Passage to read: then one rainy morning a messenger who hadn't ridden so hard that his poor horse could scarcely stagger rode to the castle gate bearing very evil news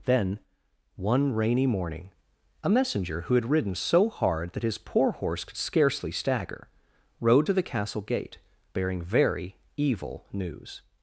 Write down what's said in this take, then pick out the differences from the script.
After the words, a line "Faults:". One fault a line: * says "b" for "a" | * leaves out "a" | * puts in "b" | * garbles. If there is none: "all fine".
then one rainy morning a messenger who had ridden so hard that his poor horse could scarcely stagger rode to the castle gate bearing very evil news
Faults:
* says "had" for "hadn't"